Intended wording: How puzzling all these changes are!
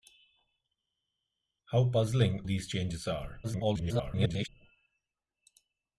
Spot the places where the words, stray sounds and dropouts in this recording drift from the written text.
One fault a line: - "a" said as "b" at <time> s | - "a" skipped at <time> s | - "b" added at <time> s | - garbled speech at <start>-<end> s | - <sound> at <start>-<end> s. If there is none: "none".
- "all" skipped at 2.4 s
- garbled speech at 3.4-4.5 s